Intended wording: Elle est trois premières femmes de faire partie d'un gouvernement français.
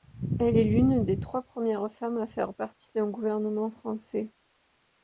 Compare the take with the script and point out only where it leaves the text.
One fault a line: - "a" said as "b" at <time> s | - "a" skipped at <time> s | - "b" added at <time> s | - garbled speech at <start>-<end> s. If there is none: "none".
- "l'une des" added at 0.6 s
- "de" said as "à" at 2.2 s